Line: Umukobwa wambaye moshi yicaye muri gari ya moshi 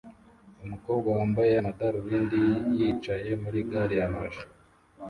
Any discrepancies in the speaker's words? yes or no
yes